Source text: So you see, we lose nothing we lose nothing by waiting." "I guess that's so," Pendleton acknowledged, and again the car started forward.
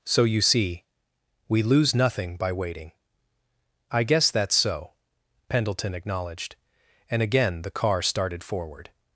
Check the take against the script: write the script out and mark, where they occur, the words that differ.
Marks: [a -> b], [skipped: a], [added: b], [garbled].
So you see, we lose nothing [skipped: we lose nothing] by waiting." "I guess that's so," Pendleton acknowledged, and again the car started forward.